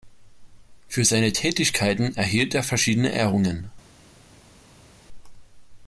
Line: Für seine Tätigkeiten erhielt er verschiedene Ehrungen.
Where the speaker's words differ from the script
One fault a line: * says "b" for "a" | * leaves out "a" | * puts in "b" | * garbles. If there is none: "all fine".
all fine